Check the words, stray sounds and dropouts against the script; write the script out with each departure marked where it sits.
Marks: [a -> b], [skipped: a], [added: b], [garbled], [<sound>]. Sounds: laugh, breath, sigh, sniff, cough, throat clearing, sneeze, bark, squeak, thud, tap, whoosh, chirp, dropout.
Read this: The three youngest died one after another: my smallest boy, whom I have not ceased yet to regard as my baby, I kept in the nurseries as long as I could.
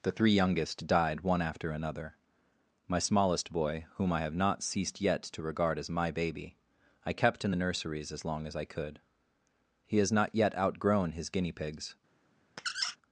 The three youngest died one after another: my smallest boy, whom I have not ceased yet to regard as my baby, I kept in the nurseries as long as I could. [added: He has not yet outgrown his guinea pigs] [squeak]